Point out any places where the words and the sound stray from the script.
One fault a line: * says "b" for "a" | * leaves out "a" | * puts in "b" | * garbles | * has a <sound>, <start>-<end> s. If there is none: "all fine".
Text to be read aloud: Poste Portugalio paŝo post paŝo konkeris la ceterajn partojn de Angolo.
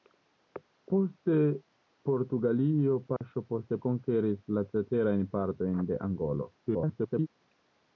* has a dropout, 3.2-3.2 s
* leaves out "paŝo"
* garbles